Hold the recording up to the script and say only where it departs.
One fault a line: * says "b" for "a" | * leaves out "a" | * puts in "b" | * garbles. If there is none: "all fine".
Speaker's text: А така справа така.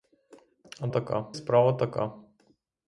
all fine